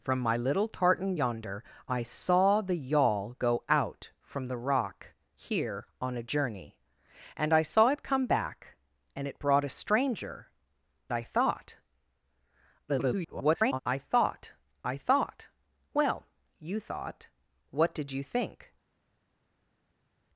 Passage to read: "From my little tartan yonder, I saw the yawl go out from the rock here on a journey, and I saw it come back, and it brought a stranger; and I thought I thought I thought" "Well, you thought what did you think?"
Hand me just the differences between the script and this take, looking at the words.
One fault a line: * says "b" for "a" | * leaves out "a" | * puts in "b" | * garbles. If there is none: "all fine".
* leaves out "and"
* garbles